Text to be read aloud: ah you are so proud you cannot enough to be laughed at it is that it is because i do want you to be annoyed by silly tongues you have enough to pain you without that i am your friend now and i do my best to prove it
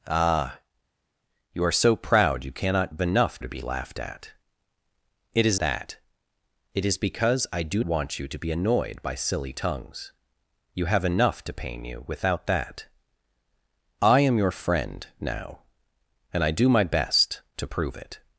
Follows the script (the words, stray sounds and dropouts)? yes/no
yes